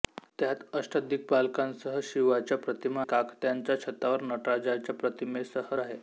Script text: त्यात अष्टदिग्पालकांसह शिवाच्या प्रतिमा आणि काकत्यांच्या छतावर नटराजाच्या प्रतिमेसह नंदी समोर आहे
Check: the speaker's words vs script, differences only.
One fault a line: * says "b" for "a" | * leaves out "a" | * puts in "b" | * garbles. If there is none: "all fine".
* leaves out "आणि"
* leaves out "नंदी समोर"